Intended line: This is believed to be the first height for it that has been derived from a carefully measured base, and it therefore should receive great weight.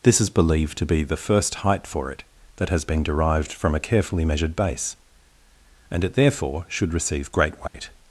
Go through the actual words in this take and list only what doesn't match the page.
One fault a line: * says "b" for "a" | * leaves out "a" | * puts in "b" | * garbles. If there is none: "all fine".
all fine